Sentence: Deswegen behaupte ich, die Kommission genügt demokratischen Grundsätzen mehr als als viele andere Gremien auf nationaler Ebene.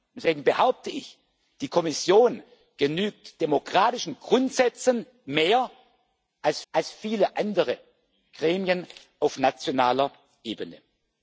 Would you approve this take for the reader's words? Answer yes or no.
yes